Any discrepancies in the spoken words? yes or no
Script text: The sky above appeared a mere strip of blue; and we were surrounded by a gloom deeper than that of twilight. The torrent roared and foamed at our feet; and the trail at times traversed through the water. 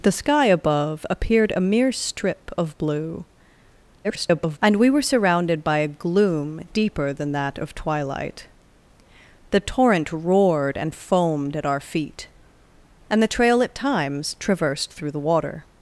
yes